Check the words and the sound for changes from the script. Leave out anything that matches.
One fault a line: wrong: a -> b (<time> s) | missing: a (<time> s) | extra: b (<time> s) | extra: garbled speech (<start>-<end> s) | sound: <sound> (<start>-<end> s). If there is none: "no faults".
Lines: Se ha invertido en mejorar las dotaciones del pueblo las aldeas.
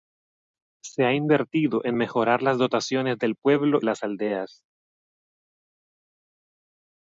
no faults